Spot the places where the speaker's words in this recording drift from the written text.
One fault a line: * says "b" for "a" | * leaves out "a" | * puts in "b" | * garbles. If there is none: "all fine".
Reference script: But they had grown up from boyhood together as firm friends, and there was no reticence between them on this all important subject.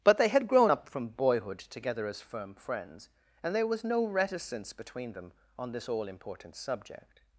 all fine